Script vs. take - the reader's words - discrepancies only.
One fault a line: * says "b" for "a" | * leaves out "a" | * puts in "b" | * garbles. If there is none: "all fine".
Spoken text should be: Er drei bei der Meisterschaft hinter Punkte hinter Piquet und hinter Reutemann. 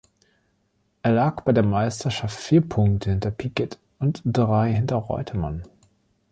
* says "lag" for "drei"
* says "vier" for "hinter"
* puts in "drei"